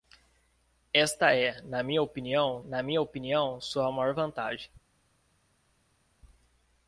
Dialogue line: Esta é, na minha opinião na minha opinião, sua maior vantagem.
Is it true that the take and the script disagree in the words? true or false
false